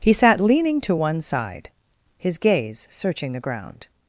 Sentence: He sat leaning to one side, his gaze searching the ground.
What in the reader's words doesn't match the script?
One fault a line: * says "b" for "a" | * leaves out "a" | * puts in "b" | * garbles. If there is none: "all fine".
all fine